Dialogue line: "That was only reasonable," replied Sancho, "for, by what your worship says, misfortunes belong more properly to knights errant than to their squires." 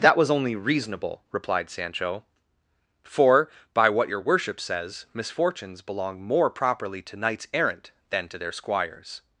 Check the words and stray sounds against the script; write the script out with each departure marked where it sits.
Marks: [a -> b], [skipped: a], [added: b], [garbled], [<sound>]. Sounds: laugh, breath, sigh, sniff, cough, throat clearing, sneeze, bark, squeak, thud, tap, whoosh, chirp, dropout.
"That was only reasonable," replied Sancho, "for, by what your worship says, misfortunes belong more properly to knights errant than to their squires."